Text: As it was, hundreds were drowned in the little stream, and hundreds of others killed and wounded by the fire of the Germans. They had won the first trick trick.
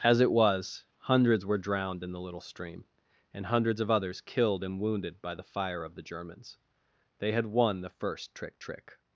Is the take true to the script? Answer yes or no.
yes